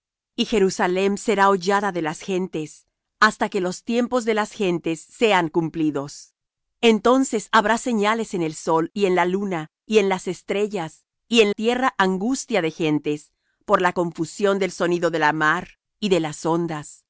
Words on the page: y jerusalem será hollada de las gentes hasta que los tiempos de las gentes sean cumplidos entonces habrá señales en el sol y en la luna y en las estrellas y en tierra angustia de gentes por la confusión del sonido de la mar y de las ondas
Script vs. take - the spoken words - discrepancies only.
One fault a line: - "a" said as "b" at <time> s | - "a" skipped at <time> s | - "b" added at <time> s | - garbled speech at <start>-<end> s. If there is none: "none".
none